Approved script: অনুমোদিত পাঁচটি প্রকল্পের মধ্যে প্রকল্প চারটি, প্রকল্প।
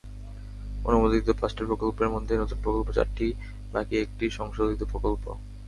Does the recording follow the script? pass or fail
fail